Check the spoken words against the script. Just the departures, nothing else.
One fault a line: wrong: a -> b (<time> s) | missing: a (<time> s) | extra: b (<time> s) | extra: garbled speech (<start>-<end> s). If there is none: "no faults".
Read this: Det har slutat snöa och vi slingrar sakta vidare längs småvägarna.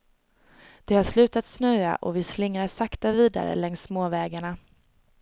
no faults